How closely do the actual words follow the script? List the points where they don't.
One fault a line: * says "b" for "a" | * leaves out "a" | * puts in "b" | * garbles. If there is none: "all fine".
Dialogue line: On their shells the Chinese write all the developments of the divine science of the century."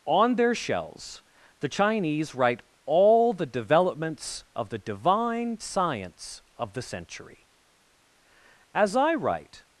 * puts in "As I write"